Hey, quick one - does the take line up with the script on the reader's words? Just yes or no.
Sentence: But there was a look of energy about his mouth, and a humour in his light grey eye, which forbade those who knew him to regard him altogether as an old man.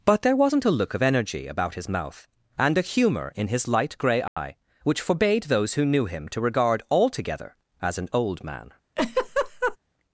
no